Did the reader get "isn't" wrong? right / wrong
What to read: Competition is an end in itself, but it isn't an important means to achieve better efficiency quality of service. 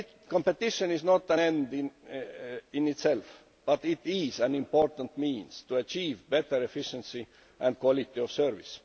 wrong